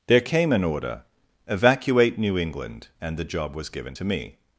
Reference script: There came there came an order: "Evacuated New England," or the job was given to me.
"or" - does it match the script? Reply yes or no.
no